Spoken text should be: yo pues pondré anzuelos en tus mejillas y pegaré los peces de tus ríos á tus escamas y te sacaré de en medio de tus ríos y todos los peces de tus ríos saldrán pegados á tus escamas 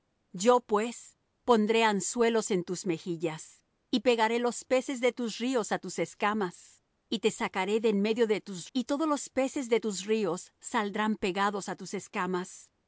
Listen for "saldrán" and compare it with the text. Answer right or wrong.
right